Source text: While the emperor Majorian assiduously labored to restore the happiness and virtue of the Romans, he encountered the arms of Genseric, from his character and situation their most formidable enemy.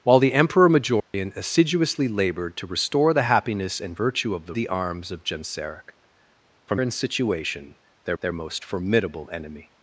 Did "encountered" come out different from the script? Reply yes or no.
yes